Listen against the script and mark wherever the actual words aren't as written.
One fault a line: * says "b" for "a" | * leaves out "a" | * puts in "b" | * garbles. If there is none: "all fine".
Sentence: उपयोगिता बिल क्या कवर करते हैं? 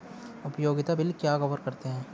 all fine